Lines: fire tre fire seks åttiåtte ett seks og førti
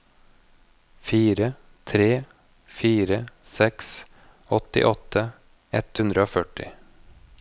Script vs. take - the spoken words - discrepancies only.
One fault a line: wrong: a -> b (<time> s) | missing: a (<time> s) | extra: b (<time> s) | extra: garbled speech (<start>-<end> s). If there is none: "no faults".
wrong: seks -> hundre (6.0 s)